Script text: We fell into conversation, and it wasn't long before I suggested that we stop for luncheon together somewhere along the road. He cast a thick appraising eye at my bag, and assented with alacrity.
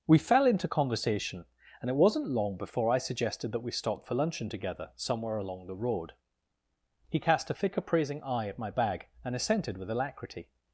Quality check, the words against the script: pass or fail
pass